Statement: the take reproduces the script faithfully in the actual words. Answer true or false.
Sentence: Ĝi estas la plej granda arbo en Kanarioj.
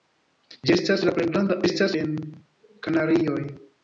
false